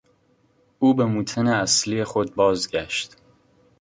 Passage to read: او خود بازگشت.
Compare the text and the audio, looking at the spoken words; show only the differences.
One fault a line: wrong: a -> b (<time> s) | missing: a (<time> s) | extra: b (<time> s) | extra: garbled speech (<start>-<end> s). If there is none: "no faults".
extra: به موطن اصلی (0.9 s)